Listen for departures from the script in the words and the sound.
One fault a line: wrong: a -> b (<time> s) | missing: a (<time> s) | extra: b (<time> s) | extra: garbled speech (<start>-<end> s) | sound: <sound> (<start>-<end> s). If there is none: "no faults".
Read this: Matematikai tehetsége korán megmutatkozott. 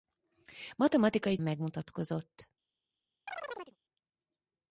missing: tehetsége korán (1.4 s)
sound: chirp (3.3-3.8 s)